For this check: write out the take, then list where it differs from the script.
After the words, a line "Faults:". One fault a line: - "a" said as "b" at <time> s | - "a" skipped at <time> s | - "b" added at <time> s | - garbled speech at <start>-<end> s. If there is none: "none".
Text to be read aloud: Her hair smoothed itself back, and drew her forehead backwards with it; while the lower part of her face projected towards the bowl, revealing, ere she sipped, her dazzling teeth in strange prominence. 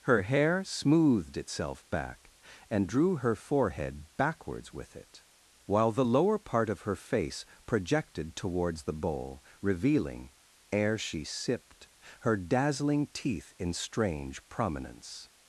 Her hair smoothed itself back, and drew her forehead backwards with it; while the lower part of her face projected towards the bowl, revealing, ere she sipped, her dazzling teeth in strange prominence.
Faults:
none